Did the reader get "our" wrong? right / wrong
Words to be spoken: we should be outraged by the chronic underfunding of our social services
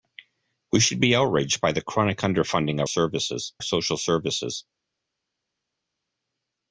wrong